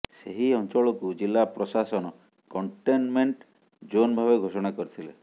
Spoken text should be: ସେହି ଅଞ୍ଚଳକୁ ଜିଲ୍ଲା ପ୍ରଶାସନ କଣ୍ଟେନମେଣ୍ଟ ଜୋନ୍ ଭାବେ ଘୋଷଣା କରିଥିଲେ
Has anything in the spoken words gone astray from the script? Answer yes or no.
no